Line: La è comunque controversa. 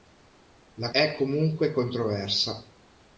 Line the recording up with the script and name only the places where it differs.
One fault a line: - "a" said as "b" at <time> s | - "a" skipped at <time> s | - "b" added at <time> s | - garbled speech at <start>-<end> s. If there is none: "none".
none